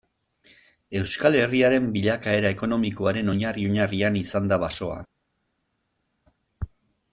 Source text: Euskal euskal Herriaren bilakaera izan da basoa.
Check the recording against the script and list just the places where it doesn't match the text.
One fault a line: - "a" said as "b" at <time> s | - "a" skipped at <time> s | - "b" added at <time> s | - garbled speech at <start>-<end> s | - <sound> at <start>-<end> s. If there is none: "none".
- "euskal" skipped at 1.4 s
- "ekonomikoaren oinarri oinarrian" added at 2.6 s